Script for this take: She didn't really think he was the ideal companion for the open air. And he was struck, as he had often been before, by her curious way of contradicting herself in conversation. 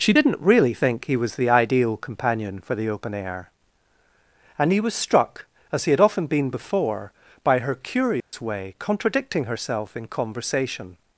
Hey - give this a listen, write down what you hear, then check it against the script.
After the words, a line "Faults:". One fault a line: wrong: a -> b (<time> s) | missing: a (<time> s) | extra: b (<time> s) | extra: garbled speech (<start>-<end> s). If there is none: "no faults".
She didn't really think he was the ideal companion for the open air. And he was struck, as he had often been before, by her curious way contradicting herself in conversation.
Faults:
missing: of (8.7 s)